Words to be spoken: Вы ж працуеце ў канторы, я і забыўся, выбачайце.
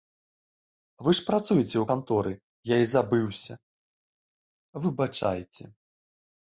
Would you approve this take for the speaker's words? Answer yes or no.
yes